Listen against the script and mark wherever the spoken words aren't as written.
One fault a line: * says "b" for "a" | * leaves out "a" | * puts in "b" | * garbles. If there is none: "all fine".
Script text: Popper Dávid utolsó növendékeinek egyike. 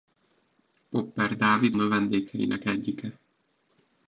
* leaves out "utolsó"